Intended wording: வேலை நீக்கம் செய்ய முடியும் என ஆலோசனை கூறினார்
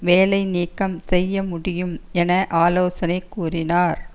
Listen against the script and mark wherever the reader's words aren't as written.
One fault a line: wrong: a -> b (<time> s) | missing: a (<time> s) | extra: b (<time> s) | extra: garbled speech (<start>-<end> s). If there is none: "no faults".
no faults